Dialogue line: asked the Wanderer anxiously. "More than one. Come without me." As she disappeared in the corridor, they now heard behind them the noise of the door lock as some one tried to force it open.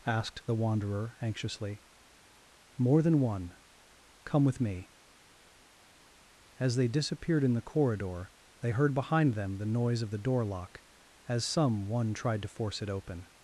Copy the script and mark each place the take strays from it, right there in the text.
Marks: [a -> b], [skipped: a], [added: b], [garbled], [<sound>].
asked the Wanderer anxiously. "More than one. Come [without -> with] me." As [she -> they] disappeared in the corridor, they [skipped: now] heard behind them the noise of the door lock as some one tried to force it open.